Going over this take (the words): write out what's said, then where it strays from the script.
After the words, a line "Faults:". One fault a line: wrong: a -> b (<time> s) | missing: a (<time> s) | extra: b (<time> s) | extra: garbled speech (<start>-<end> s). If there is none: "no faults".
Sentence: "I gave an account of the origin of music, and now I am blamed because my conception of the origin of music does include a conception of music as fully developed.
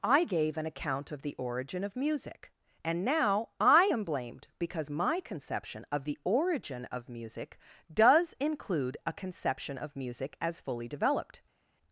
"I gave an account of the origin of music, and now I am blamed because my conception of the origin of music does include a conception of music as fully developed.
Faults:
no faults